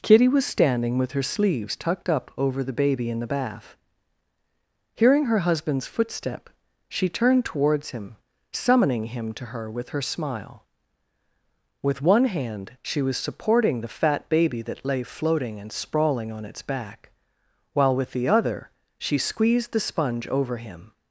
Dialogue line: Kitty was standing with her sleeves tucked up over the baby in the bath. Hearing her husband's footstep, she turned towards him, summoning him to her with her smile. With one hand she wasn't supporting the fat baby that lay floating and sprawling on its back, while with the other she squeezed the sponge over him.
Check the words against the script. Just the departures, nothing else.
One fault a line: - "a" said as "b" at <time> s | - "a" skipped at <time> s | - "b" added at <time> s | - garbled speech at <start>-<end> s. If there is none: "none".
- "wasn't" said as "was" at 13.0 s